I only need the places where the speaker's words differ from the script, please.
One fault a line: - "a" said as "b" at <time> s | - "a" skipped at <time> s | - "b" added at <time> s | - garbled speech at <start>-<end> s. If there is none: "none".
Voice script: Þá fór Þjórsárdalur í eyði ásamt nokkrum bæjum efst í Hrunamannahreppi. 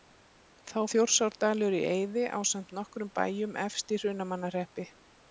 - "fór" skipped at 0.8 s